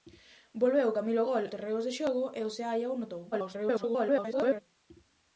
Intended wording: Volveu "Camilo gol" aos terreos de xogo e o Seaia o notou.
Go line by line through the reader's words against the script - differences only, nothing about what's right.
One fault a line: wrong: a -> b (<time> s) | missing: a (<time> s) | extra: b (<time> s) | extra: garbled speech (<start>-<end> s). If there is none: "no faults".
missing: aos (1.5 s)
extra: garbled speech (3.3-4.6 s)